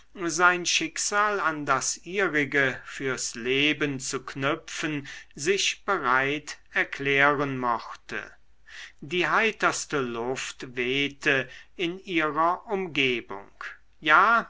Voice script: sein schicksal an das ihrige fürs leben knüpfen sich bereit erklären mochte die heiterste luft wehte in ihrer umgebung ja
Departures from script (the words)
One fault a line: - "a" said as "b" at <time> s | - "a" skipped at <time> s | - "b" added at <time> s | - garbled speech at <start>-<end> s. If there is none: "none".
- "zu" added at 4.0 s